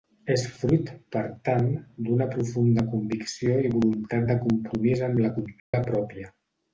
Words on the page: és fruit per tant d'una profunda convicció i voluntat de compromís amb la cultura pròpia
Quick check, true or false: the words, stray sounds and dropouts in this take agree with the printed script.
false